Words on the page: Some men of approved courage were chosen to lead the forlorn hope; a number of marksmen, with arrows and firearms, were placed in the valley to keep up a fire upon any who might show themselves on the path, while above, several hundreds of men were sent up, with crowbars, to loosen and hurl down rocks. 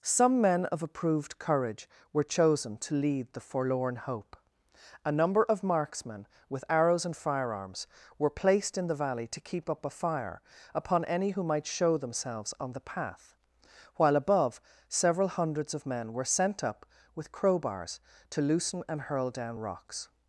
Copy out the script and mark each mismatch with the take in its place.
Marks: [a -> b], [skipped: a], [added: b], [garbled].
Some men of approved courage were chosen to lead the forlorn hope; a number of marksmen, with arrows and firearms, were placed in the valley to keep up a fire upon any who might show themselves on the path, while above, several hundreds of men were sent up, with crowbars, to loosen and hurl down rocks.